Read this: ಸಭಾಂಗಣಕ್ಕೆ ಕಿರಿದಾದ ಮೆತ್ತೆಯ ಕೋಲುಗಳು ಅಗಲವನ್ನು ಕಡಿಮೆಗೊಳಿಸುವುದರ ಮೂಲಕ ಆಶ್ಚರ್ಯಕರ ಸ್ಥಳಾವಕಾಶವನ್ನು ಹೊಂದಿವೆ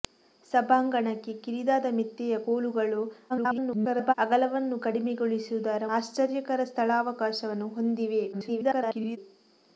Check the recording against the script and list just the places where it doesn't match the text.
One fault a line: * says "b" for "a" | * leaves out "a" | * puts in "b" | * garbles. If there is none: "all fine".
* garbles
* leaves out "ಮೂಲಕ"
* garbles